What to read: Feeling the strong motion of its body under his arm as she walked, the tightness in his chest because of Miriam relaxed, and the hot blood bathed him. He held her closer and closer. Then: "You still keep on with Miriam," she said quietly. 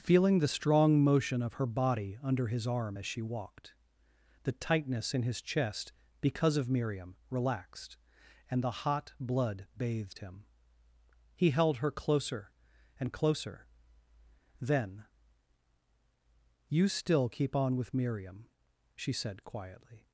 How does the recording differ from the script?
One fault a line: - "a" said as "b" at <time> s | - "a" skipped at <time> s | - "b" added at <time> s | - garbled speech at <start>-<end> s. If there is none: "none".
- "its" said as "her" at 1.5 s